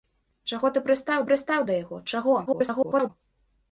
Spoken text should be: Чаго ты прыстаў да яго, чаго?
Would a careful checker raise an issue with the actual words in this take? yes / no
yes